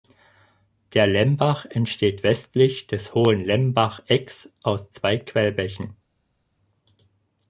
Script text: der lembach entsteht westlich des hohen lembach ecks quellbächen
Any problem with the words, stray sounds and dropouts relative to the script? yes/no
yes